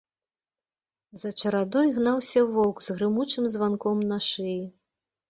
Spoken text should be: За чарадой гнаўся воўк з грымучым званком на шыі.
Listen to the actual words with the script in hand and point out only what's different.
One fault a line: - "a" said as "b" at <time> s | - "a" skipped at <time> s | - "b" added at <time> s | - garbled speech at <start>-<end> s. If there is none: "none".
none